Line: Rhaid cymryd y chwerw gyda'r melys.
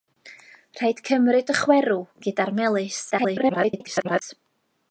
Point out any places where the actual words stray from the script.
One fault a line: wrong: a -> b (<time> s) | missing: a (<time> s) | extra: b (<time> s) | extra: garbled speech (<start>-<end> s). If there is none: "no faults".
extra: garbled speech (3.1-4.2 s)